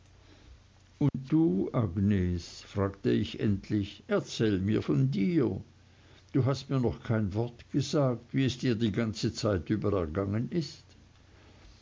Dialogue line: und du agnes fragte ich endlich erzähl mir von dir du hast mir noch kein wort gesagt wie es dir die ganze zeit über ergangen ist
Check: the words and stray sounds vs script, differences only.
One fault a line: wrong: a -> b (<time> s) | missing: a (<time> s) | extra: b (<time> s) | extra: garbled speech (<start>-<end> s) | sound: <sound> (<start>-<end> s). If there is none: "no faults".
sound: dropout (1.1-1.1 s)